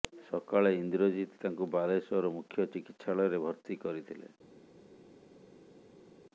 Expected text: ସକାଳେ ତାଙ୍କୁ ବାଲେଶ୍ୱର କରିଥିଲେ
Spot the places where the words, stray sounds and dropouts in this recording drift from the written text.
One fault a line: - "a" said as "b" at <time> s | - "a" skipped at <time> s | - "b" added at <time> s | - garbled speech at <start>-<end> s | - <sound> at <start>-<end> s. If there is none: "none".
- "ଇନ୍ଦ୍ରଜିତ" added at 0.8 s
- "ମୁଖ୍ୟ ଚିକିତ୍ସାଳୟରେ ଭର୍ତ୍ତି" added at 2.4 s